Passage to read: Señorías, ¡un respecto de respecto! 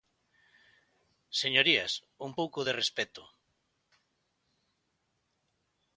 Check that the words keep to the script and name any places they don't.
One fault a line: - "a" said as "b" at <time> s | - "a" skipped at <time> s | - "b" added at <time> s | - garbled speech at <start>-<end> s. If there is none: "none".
- "respecto" said as "pouco" at 2.4 s